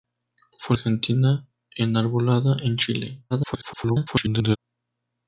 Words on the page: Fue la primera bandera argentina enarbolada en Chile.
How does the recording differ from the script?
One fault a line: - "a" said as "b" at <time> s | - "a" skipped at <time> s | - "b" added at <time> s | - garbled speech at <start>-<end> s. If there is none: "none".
- "la primera bandera" skipped at 0.8 s
- garbled speech at 3.3-4.6 s